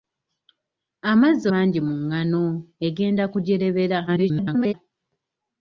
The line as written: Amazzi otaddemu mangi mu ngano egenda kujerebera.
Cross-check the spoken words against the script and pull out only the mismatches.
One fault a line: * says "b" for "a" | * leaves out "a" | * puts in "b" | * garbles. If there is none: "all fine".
* leaves out "otaddemu"
* garbles